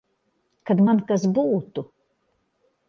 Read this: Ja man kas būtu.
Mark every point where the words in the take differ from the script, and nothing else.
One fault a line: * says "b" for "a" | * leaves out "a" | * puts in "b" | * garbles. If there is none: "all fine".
* says "Kad" for "Ja"